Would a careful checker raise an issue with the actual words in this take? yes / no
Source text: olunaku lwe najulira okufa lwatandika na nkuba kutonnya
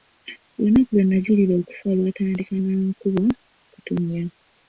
no